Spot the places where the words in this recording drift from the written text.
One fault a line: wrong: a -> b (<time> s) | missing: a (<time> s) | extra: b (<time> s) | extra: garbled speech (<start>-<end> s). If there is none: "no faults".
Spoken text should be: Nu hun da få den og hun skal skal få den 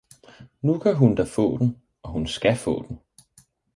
extra: kan (0.8 s)
missing: skal (2.6 s)